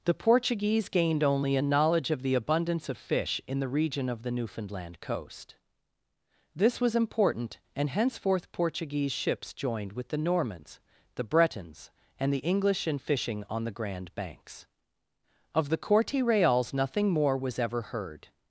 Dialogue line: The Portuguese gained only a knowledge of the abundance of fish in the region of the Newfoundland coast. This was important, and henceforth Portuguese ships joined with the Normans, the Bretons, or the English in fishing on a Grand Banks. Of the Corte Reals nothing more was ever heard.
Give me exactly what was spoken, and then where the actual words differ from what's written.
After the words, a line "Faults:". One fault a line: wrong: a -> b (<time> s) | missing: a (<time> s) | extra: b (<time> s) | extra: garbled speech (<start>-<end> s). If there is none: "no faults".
The Portuguese gained only a knowledge of the abundance of fish in the region of the Newfoundland coast. This was important, and henceforth Portuguese ships joined with the Normans, the Bretons, and the English in fishing on the Grand Banks. Of the Corte Reals nothing more was ever heard.
Faults:
wrong: or -> and (12.2 s)
wrong: a -> the (13.6 s)